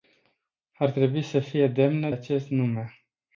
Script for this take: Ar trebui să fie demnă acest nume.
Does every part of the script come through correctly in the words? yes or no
yes